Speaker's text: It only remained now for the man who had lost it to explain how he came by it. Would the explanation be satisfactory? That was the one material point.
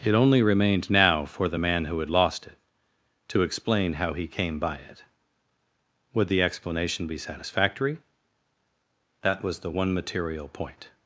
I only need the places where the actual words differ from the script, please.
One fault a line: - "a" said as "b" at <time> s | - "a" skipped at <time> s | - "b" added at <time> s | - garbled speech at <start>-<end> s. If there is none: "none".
none